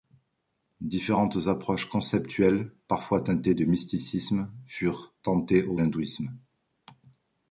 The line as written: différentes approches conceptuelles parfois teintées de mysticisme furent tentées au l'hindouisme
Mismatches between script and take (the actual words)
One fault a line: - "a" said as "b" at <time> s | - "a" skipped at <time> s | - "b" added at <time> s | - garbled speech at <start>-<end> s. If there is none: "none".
none